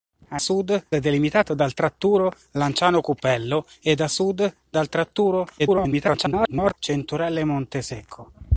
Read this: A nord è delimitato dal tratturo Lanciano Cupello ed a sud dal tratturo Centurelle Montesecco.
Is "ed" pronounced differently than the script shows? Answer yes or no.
no